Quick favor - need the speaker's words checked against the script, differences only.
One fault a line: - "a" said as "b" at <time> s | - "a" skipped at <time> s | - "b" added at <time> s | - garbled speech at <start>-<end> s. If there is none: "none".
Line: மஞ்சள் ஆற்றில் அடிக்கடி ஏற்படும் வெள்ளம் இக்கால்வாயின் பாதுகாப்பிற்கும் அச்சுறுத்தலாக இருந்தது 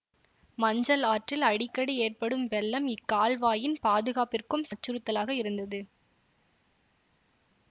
none